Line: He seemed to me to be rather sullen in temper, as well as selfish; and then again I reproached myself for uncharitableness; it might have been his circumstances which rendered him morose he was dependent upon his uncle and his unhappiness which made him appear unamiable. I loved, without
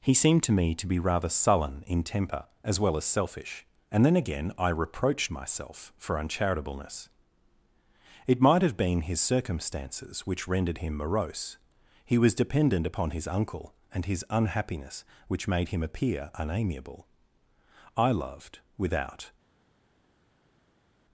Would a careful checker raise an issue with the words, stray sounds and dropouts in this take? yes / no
no